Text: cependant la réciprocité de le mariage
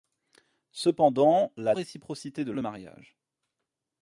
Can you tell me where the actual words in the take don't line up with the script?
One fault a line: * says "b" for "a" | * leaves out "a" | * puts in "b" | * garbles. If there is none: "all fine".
all fine